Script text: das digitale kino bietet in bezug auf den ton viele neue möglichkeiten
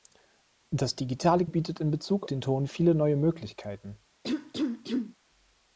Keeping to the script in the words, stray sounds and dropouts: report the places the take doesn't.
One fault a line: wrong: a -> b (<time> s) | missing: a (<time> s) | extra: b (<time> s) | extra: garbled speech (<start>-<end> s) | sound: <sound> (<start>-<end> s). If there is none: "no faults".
missing: kino (1.4 s)
missing: auf (2.3 s)
sound: cough (4.2-5.2 s)